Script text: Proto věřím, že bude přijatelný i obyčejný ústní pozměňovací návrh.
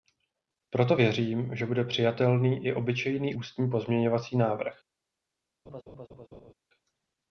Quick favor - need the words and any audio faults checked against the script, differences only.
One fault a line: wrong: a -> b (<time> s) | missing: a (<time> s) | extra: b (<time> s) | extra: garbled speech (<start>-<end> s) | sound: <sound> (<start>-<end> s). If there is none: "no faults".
sound: laugh (5.7-6.5 s)